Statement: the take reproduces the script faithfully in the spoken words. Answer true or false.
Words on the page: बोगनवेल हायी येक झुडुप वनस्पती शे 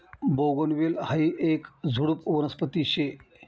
true